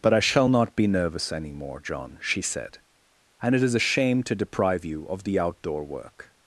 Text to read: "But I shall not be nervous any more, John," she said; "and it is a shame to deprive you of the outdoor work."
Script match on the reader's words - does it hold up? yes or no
yes